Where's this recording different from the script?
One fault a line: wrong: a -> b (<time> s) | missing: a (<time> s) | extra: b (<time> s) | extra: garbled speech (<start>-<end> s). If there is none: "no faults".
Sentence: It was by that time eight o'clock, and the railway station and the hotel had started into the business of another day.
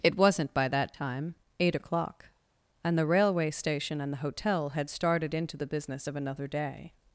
wrong: was -> wasn't (0.2 s)